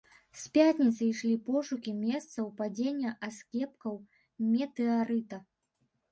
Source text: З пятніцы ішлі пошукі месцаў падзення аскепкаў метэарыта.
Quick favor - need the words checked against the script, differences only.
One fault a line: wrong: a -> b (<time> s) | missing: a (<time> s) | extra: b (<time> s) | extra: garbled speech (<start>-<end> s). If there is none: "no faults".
no faults